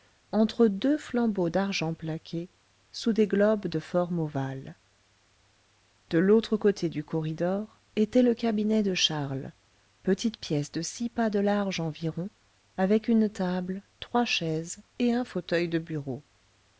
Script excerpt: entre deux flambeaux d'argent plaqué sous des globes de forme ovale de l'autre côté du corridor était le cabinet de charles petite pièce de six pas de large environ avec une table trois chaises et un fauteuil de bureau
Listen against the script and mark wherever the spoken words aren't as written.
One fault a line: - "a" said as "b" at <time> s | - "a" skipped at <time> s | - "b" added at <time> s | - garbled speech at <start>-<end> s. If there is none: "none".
none